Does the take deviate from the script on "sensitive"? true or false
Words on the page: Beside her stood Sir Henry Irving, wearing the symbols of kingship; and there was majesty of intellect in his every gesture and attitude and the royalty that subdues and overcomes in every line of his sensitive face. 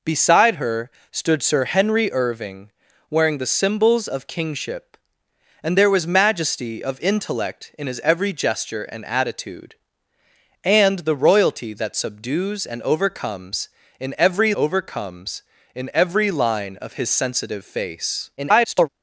false